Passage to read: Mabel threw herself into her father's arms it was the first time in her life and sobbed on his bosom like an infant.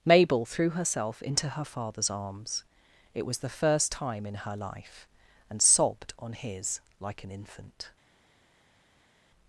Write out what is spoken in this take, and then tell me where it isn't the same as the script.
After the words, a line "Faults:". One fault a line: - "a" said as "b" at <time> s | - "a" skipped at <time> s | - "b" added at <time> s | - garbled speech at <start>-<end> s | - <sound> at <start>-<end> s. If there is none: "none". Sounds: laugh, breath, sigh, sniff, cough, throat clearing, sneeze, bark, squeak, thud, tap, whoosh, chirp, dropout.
Mabel threw herself into her father's arms it was the first time in her life and sobbed on his like an infant.
Faults:
- "bosom" skipped at 6.8 s